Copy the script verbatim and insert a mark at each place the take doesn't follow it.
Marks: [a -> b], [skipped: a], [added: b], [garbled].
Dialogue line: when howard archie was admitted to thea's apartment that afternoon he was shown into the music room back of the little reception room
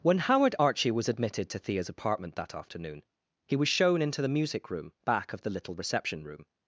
when howard archie was admitted to thea's apartment that afternoon he was shown into the music room back of the little reception room